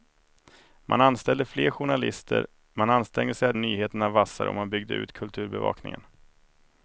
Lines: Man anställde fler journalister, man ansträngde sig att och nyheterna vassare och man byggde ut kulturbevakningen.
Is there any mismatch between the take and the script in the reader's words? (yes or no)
no